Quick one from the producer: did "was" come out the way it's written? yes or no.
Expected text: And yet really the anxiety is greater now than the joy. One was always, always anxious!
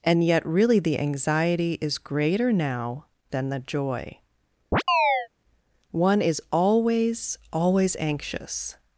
no